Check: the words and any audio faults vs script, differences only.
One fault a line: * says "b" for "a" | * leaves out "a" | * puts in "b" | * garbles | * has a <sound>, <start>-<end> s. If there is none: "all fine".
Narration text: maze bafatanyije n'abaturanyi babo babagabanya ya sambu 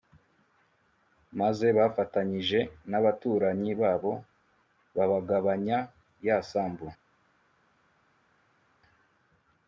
all fine